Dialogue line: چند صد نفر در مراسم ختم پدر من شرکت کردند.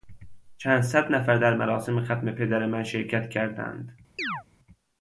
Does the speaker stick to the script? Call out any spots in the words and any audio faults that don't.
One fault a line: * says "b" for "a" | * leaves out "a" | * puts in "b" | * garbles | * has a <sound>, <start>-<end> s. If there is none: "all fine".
* has a chirp, 4.2-4.4 s